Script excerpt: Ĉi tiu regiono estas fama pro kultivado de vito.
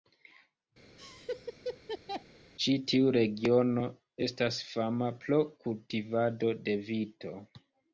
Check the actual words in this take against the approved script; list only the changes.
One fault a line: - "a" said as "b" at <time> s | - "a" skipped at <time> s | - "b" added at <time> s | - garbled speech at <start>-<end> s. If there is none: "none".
none